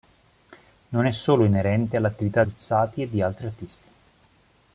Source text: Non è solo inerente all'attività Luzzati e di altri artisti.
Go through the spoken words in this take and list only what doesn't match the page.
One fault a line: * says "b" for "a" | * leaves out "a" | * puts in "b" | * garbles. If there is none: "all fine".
all fine